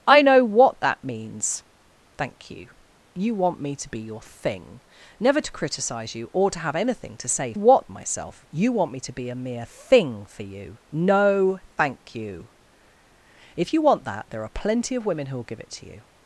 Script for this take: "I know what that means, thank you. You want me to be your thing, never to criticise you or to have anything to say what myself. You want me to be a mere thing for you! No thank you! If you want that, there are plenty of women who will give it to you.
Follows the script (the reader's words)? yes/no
yes